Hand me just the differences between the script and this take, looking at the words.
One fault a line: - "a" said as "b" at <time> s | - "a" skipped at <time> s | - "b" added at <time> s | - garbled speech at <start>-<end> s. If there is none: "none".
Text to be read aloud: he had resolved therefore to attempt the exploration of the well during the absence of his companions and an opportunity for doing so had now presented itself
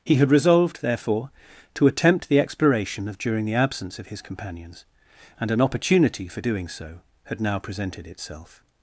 - "the well" skipped at 3.2 s